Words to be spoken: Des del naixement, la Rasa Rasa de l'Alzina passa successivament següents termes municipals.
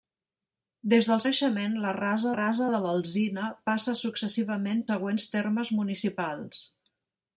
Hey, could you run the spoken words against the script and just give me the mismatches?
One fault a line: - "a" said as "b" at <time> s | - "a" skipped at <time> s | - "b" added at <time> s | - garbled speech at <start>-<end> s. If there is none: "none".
none